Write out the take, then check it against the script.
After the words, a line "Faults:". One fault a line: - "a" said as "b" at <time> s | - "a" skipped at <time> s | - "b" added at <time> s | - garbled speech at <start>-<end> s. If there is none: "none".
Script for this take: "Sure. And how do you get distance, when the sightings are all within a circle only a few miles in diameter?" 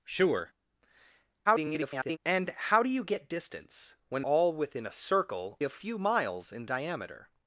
"Sure. [garbled] And how do you get distance, when all within a circle a few miles in diameter?"
Faults:
- garbled speech at 1.5-2.2 s
- "the sightings are" skipped at 4.2 s
- "only" skipped at 5.6 s